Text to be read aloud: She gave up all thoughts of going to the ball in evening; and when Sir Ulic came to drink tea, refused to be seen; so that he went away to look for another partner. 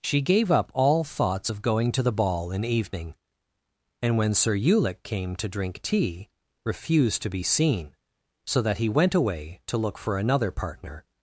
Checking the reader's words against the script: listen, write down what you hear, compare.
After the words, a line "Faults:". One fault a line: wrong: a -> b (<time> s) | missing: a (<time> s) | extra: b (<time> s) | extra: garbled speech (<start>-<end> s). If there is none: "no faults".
She gave up all thoughts of going to the ball in evening; and when Sir Ulic came to drink tea, refused to be seen; so that he went away to look for another partner.
Faults:
no faults